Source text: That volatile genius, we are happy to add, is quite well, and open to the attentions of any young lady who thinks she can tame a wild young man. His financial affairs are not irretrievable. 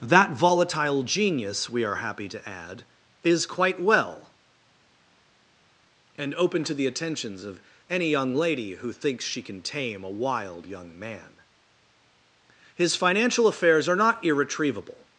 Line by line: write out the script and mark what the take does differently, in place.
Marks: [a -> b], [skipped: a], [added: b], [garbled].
That volatile genius, we are happy to add, is quite well, and open to the attentions of any young lady who thinks she can tame a wild young man. His financial affairs are not irretrievable.